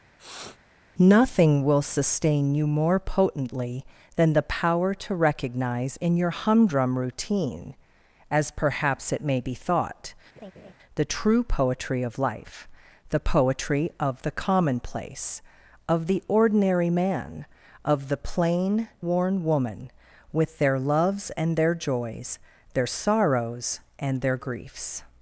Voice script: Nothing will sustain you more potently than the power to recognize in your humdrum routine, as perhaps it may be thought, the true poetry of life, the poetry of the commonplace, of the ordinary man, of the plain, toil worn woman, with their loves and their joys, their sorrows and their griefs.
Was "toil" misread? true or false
true